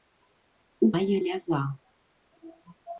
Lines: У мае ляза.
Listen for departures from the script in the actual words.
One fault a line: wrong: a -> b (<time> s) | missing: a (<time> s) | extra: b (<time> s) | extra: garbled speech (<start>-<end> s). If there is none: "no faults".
no faults